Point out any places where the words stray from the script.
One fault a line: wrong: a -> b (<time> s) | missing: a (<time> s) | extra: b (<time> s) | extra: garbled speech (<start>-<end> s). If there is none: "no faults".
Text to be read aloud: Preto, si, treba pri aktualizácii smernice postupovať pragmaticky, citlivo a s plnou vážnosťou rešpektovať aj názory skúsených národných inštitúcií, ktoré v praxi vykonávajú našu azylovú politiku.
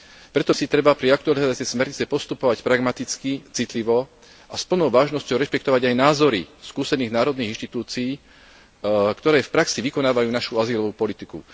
no faults